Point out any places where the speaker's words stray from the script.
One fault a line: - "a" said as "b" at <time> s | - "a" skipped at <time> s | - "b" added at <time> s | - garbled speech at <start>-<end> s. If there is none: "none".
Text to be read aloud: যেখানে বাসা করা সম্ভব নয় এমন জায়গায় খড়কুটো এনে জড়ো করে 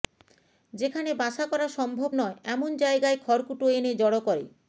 none